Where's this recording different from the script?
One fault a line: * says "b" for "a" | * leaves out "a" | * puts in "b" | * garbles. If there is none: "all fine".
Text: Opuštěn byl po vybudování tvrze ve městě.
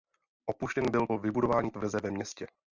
all fine